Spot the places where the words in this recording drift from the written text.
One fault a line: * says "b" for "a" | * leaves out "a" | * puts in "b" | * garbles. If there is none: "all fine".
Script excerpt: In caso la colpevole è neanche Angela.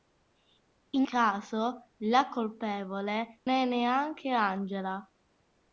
all fine